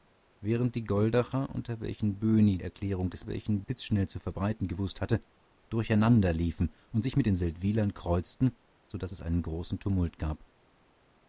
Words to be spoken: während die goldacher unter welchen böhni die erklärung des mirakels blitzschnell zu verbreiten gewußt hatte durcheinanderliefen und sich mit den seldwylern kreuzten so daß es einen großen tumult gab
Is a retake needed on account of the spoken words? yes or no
yes